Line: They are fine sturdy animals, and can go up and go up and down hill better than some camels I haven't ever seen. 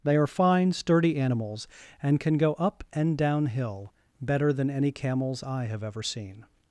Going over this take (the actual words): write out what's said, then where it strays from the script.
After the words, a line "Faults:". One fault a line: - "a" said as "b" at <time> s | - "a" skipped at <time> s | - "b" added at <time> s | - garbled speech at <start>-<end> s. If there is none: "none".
They are fine sturdy animals, and can go up and down hill better than any camels I have ever seen.
Faults:
- "go up and" skipped at 3.2 s
- "some" said as "any" at 4.7 s
- "haven't" said as "have" at 5.7 s